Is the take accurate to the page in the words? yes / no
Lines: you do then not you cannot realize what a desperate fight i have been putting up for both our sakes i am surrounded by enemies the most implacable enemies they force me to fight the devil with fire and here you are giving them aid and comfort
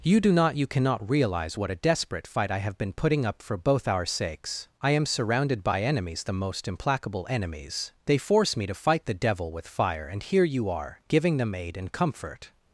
no